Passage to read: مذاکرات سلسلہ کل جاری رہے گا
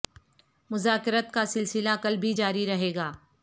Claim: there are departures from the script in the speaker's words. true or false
true